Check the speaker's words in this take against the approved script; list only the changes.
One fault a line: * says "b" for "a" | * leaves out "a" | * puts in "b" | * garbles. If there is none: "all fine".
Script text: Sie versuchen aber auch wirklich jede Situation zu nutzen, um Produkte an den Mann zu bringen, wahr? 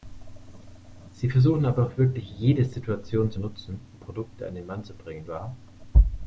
all fine